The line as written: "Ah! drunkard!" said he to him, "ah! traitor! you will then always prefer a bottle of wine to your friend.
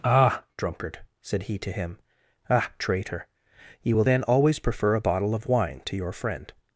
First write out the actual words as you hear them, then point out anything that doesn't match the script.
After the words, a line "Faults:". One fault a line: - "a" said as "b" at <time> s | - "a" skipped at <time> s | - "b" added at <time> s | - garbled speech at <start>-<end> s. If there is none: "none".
"Ah! drunkard!" said he to him, "ah! traitor! you will then always prefer a bottle of wine to your friend.
Faults:
none